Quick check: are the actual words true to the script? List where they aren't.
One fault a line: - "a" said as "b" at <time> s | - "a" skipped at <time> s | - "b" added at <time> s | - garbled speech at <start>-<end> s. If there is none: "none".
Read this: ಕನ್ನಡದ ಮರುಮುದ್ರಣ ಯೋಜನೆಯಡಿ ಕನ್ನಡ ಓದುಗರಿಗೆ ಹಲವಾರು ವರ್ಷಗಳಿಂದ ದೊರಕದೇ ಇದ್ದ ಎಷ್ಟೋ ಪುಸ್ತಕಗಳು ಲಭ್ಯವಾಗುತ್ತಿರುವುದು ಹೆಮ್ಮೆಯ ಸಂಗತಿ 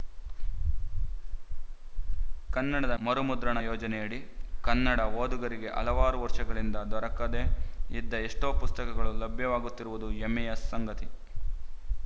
none